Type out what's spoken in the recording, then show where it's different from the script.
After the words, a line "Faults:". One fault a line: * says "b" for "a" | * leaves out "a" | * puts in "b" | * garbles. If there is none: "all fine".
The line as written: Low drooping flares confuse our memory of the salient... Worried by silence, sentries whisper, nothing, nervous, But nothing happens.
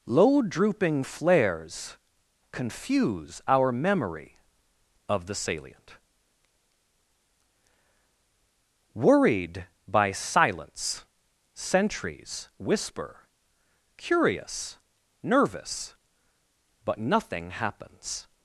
Low drooping flares confuse our memory of the salient... Worried by silence, sentries whisper, curious, nervous, But nothing happens.
Faults:
* says "curious" for "nothing"